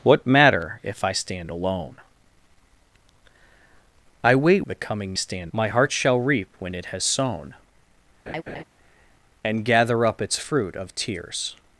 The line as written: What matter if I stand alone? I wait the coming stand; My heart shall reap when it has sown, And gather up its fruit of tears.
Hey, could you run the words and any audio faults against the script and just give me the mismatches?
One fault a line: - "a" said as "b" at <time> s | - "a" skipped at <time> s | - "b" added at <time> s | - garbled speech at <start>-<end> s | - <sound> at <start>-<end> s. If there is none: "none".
- laugh at 8.3-8.6 s